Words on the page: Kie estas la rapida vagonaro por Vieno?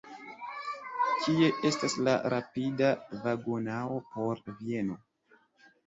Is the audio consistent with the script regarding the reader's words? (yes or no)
yes